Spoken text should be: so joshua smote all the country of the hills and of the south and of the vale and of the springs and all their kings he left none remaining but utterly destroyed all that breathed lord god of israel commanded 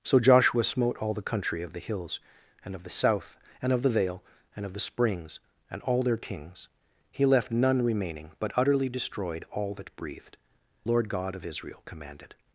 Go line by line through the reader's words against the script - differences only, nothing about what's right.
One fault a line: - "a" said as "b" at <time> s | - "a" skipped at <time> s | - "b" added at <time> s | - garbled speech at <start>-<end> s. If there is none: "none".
none